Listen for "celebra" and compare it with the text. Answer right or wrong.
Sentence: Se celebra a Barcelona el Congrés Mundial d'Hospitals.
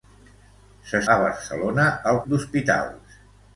wrong